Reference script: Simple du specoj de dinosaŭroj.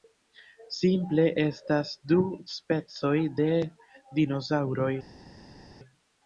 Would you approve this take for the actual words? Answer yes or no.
no